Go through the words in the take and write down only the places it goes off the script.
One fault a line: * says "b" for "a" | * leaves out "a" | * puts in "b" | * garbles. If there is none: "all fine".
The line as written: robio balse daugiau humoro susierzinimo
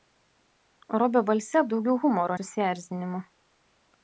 all fine